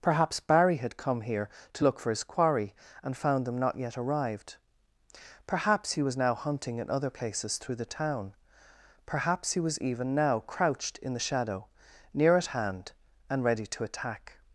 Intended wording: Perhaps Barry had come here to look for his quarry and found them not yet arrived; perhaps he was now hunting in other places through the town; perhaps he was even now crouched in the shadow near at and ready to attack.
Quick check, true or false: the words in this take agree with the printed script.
false